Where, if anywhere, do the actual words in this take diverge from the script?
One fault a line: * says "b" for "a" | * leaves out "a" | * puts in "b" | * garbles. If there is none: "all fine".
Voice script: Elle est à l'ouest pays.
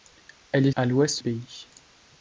all fine